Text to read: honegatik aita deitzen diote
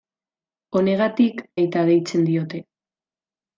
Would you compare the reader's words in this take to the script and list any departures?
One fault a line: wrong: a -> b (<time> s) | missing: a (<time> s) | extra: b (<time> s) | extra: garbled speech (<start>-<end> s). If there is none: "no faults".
no faults